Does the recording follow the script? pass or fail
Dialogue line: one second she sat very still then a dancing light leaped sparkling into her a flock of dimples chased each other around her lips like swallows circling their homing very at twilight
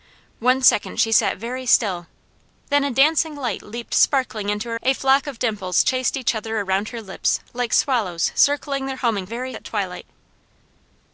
pass